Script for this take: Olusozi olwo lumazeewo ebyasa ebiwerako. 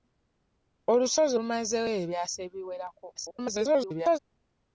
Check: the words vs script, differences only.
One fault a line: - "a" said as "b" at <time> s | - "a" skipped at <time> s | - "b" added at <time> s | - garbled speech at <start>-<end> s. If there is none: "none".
- "olwo" skipped at 1.4 s
- garbled speech at 3.2-4.2 s